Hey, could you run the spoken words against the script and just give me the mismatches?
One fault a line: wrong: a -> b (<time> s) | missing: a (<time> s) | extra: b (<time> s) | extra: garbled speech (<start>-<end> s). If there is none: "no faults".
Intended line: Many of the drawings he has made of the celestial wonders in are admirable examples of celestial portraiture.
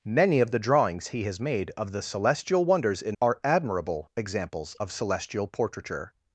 no faults